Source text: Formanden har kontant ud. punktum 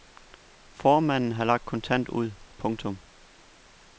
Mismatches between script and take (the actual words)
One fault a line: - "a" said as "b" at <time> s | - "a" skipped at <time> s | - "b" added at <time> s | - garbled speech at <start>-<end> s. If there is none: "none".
- "lagt" added at 1.4 s